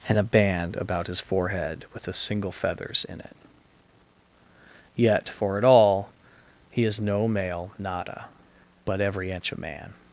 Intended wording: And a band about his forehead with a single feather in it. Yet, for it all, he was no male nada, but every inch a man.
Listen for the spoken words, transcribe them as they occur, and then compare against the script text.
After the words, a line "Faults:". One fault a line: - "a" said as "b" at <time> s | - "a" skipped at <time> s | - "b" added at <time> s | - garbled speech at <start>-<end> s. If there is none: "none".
And a band about his forehead with a single feathers in it. Yet, for it all, he is no male nada, but every inch a man.
Faults:
- "feather" said as "feathers" at 2.5 s
- "was" said as "is" at 6.8 s